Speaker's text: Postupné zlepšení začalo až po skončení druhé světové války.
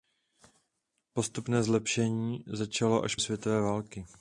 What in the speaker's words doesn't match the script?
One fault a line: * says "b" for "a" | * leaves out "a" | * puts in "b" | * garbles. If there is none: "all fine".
* leaves out "po skončení druhé"